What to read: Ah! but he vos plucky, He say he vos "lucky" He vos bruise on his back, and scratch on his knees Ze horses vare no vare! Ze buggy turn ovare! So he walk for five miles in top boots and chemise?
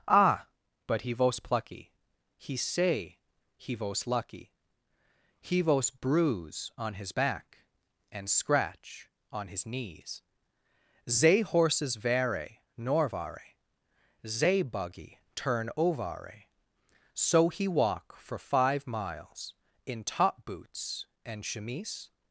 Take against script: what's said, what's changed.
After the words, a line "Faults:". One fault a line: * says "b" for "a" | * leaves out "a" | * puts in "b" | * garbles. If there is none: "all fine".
Ah! but he vos plucky, He say he vos "lucky" He vos bruise on his back, and scratch on his knees Ze horses vare nor vare! Ze buggy turn ovare! So he walk for five miles in top boots and chemise?
Faults:
* says "nor" for "no"